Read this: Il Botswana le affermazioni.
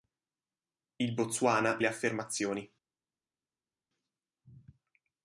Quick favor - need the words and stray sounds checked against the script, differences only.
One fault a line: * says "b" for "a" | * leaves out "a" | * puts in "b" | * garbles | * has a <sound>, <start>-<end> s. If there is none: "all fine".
all fine